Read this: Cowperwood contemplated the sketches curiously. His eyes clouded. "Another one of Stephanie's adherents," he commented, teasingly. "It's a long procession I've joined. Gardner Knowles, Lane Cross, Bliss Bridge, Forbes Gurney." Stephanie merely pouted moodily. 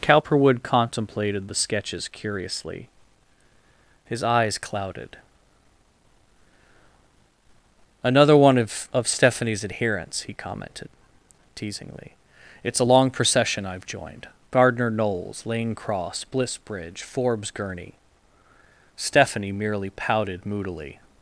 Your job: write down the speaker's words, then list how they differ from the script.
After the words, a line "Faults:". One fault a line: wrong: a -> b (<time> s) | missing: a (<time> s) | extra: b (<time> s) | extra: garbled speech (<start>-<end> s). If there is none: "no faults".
Cowperwood contemplated the sketches curiously. His eyes clouded. "Another one of of Stephanie's adherents," he commented, teasingly. "It's a long procession I've joined. Gardner Knowles, Lane Cross, Bliss Bridge, Forbes Gurney." Stephanie merely pouted moodily.
Faults:
extra: of (8.9 s)